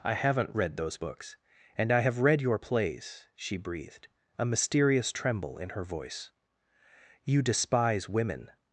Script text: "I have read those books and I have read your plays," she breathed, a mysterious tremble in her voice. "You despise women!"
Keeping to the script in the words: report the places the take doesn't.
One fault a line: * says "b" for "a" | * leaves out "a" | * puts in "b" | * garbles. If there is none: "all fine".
* says "haven't" for "have"